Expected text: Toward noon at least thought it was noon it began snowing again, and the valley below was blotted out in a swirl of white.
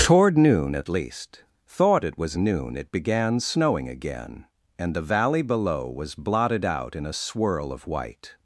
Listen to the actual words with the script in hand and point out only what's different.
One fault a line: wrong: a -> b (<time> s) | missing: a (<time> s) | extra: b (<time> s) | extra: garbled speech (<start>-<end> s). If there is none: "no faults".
no faults